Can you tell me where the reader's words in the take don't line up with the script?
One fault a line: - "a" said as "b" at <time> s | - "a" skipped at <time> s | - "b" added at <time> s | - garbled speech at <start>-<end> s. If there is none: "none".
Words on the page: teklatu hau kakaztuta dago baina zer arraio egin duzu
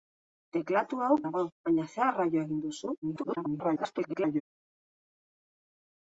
- "kakaztuta" skipped at 1.2 s
- garbled speech at 3.0-4.4 s